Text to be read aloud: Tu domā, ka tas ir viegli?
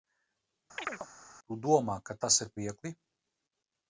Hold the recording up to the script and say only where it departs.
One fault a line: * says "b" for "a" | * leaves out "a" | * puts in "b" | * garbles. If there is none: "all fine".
all fine